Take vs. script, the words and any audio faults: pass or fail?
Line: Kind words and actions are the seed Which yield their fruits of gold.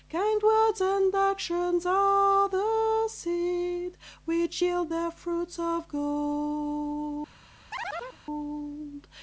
fail